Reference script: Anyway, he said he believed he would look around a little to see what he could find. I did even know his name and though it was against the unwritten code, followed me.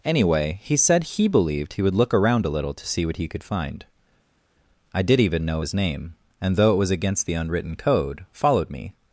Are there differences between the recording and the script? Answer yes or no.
no